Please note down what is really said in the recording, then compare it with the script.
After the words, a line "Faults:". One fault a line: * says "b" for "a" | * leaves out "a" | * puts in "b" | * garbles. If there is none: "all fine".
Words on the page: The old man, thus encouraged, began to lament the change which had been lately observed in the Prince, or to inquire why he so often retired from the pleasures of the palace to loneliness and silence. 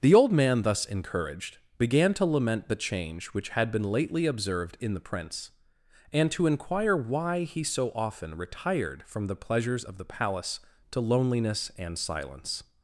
The old man, thus encouraged, began to lament the change which had been lately observed in the Prince, and to inquire why he so often retired from the pleasures of the palace to loneliness and silence.
Faults:
* says "and" for "or"